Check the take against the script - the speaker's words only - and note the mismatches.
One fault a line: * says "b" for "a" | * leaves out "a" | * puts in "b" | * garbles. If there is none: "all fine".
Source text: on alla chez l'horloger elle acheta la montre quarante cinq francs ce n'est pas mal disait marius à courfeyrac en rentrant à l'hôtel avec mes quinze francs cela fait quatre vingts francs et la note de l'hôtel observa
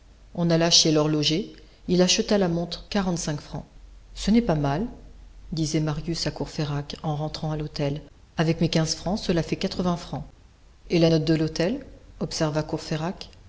* says "il" for "elle"